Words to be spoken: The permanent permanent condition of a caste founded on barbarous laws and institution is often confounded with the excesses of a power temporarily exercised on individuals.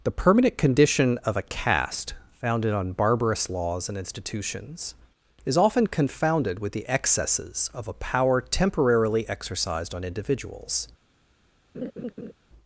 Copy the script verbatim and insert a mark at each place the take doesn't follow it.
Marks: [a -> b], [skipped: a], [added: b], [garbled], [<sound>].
The permanent [skipped: permanent] condition of a caste founded on barbarous laws and [institution -> institutions] is often confounded with the excesses of a power temporarily exercised on individuals. [laugh]